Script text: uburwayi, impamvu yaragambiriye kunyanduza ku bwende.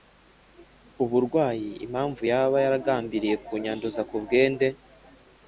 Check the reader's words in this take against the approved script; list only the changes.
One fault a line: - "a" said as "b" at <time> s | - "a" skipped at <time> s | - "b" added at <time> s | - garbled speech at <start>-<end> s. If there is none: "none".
- "yaba" added at 2.3 s